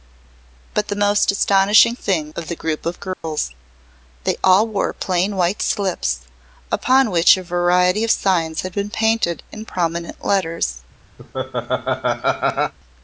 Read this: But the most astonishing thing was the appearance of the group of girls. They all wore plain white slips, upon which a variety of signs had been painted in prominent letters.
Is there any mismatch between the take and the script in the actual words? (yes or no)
yes